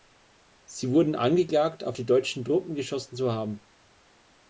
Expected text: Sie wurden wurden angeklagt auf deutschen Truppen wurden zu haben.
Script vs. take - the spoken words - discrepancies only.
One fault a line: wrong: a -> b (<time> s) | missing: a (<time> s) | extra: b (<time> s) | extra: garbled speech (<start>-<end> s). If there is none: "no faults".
missing: wurden (1.1 s)
extra: die (1.9 s)
wrong: wurden -> geschossen (2.7 s)